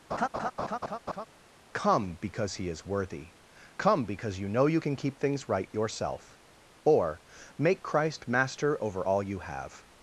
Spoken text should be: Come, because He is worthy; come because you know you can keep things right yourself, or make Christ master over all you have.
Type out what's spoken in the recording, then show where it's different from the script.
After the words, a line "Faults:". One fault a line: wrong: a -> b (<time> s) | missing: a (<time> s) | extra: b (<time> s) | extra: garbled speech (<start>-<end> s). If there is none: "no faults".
Come, because He is worthy; come because you know you can keep things right yourself, or make Christ master over all you have.
Faults:
no faults